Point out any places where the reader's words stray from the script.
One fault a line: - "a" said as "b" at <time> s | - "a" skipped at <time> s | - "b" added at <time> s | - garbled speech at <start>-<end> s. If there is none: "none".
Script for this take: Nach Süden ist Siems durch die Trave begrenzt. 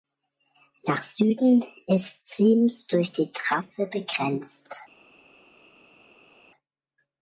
none